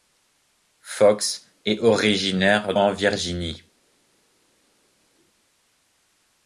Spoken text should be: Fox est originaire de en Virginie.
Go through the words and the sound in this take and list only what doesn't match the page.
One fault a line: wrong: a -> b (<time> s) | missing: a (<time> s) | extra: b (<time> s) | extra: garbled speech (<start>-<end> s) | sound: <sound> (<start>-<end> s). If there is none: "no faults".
missing: de (2.7 s)